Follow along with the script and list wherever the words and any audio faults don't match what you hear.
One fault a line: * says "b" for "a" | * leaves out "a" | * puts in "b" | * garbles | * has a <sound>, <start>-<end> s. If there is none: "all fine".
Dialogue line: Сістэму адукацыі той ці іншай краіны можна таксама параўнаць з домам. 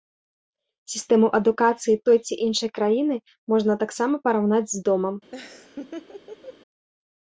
* has a laugh, 5.3-6.6 s